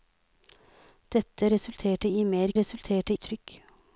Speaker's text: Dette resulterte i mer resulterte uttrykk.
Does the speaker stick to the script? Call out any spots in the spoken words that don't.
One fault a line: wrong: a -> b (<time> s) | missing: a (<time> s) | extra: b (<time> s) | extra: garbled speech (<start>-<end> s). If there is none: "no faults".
no faults